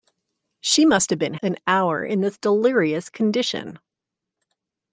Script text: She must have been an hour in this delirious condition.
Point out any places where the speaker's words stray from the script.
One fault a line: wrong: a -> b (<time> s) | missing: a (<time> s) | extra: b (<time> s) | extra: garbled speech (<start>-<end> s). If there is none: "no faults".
no faults